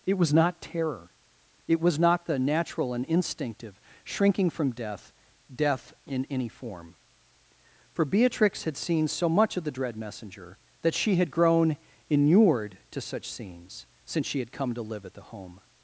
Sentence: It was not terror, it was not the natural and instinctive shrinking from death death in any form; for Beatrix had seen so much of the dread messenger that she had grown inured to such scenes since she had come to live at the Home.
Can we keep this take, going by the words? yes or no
yes